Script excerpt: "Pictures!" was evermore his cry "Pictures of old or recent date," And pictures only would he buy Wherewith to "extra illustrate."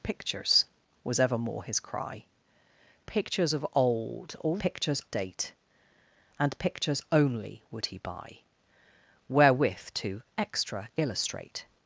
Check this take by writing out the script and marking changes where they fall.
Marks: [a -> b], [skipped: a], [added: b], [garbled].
"Pictures!" was evermore his cry "Pictures of old or [recent -> pictures] date," And pictures only would he buy Wherewith to "extra illustrate."